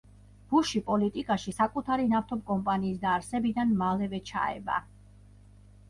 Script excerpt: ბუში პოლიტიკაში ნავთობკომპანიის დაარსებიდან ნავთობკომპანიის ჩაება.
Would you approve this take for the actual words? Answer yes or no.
no